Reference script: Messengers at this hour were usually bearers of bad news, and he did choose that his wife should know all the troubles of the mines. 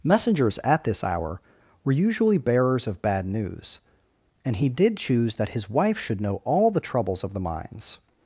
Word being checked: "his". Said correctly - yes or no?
yes